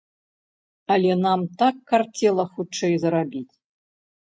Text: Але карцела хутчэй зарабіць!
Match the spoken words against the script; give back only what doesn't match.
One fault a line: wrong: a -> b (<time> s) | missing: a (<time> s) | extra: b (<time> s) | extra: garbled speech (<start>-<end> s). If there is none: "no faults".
extra: нам так (1.2 s)